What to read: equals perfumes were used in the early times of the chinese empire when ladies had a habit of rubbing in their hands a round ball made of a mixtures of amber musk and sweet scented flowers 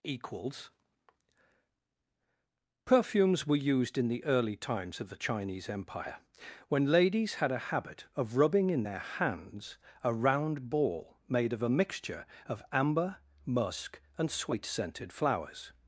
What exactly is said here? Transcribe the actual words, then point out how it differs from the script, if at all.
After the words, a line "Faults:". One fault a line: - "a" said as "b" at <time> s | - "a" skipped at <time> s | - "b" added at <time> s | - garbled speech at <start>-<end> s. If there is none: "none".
equals perfumes were used in the early times of the chinese empire when ladies had a habit of rubbing in their hands a round ball made of a mixture of amber musk and sweet scented flowers
Faults:
- "mixtures" said as "mixture" at 11.7 s